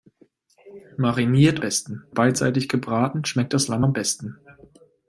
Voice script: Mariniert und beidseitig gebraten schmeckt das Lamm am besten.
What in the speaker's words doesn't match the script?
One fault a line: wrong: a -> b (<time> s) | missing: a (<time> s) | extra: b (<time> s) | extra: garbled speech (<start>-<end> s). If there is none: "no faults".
wrong: und -> besten (1.6 s)